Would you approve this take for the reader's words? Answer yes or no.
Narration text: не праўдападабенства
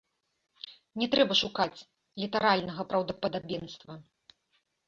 no